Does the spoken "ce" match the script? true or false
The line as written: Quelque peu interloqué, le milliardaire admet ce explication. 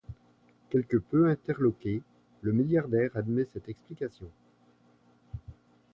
false